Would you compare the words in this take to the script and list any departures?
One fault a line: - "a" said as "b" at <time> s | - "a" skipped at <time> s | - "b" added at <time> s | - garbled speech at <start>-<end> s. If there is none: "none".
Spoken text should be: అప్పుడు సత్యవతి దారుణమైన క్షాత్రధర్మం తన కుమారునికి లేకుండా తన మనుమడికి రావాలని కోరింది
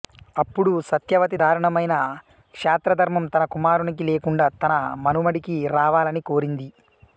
none